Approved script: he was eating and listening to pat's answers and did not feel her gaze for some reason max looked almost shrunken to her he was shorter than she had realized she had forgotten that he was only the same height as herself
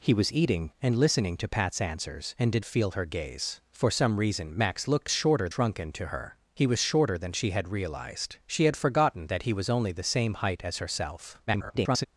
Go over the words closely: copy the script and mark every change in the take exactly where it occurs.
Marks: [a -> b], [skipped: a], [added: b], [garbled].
he was eating and listening to pat's answers and did [skipped: not] feel her gaze for some reason max looked [almost -> shorter] shrunken to her he was shorter than she had realized she had forgotten that he was only the same height as herself [garbled]